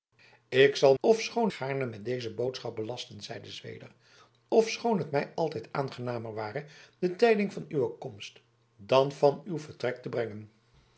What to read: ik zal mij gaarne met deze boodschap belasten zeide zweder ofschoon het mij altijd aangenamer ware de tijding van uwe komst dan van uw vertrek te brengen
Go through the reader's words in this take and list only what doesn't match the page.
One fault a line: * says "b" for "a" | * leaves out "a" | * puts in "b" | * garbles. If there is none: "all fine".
* says "ofschoon" for "mij"